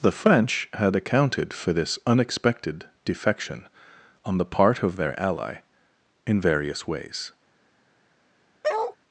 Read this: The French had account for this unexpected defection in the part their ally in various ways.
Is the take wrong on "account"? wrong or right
wrong